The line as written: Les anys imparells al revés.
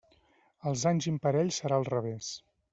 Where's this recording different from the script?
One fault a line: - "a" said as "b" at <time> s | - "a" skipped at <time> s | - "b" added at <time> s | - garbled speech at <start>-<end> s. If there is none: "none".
- "Les" said as "Els" at 0.7 s
- "serà" added at 1.6 s